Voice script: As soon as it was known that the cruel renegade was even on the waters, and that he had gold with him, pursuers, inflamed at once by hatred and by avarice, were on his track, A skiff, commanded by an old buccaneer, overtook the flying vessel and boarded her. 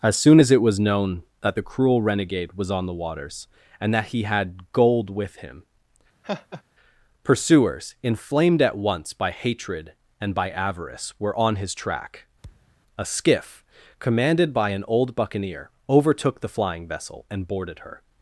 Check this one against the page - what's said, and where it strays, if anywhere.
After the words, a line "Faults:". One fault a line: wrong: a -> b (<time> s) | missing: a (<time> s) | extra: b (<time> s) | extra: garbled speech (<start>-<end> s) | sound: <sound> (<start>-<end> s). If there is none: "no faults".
As soon as it was known that the cruel renegade was on the waters, and that he had gold with him, pursuers, inflamed at once by hatred and by avarice, were on his track, A skiff, commanded by an old buccaneer, overtook the flying vessel and boarded her.
Faults:
missing: even (2.7 s)
sound: laugh (6.2-6.6 s)
sound: thud (12.4-12.8 s)